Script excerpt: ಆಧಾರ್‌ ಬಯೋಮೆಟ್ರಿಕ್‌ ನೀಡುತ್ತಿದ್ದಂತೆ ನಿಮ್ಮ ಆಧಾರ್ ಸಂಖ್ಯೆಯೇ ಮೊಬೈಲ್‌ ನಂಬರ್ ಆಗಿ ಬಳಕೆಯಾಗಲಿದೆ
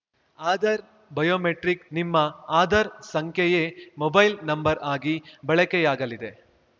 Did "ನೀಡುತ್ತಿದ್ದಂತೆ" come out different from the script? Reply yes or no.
yes